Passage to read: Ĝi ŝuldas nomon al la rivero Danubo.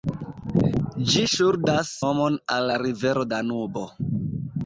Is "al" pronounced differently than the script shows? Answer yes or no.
no